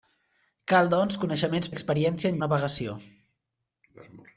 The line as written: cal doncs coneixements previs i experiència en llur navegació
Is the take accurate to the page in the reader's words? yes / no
no